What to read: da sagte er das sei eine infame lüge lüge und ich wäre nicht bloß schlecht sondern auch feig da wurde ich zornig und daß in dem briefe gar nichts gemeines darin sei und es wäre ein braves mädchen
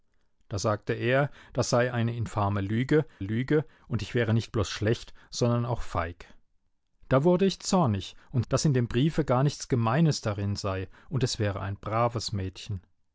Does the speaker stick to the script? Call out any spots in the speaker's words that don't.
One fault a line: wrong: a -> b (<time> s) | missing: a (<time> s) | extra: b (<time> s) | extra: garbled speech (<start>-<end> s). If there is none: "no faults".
no faults